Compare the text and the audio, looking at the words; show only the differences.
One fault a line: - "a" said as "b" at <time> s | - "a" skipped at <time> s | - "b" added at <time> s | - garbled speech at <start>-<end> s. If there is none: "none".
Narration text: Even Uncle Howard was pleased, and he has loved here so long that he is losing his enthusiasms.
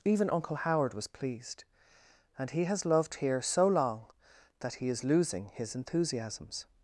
none